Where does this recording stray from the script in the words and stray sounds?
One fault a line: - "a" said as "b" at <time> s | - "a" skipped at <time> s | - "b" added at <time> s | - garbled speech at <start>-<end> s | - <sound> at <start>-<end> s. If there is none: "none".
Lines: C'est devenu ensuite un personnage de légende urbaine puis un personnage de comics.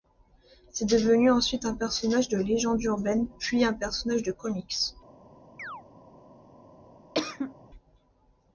- chirp at 5.6-5.8 s
- cough at 7.1-7.5 s